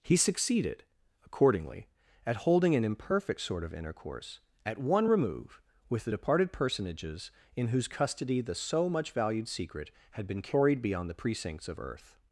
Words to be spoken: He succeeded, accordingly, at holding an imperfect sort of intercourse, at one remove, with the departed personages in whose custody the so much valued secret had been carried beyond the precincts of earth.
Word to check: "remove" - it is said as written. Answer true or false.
true